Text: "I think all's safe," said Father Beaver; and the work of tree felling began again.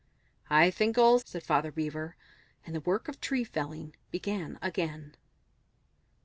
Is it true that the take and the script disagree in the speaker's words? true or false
true